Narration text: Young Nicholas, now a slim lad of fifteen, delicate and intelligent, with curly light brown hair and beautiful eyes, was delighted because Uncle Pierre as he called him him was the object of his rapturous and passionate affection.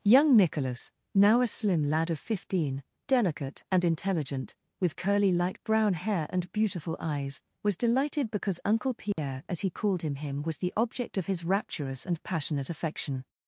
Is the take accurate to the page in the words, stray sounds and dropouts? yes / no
no